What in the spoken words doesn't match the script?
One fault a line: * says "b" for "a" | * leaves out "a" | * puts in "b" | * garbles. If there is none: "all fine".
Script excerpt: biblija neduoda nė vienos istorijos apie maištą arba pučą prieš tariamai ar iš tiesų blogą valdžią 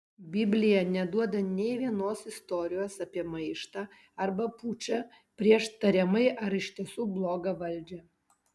all fine